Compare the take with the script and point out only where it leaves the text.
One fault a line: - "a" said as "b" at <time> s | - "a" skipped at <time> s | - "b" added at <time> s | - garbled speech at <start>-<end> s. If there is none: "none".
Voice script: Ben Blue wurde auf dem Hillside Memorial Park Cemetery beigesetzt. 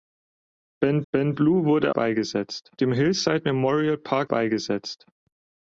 - "ben" added at 1.1 s
- "auf" said as "beigesetzt" at 1.9 s
- "Cemetery" skipped at 4.3 s